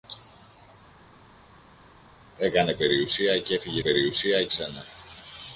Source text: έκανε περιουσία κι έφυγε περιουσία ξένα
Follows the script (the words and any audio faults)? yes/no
yes